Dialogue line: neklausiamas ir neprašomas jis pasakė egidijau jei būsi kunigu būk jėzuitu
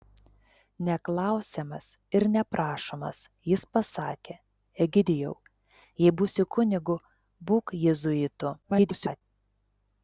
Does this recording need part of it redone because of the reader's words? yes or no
yes